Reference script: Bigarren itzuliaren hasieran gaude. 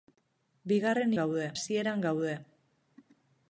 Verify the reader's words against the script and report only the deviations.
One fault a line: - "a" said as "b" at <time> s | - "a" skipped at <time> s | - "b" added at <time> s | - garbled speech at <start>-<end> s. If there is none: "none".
- "itzuliaren" said as "gaude" at 1.2 s